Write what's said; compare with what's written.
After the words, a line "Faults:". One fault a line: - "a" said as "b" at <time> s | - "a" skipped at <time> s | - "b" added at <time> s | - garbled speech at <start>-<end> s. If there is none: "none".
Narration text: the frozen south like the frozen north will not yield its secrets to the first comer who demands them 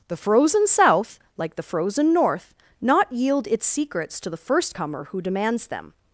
the frozen south like the frozen north not yield its secrets to the first comer who demands them
Faults:
- "will" skipped at 2.5 s